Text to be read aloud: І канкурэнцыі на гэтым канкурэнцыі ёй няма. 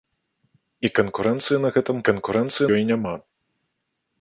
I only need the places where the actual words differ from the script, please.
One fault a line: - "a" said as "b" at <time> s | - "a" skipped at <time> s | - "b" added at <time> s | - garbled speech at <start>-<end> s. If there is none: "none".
none